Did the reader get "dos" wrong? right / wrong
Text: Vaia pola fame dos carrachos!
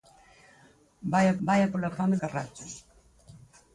wrong